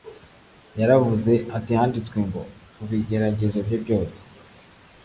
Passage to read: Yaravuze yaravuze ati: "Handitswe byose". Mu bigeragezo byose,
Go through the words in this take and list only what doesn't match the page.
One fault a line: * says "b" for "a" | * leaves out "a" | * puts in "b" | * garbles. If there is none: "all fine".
* leaves out "yaravuze"
* says "ngo" for "byose"
* puts in "bye"